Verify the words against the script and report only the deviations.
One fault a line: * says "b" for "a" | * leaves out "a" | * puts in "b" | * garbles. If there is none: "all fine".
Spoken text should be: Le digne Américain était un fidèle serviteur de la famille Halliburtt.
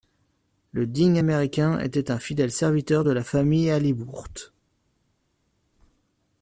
all fine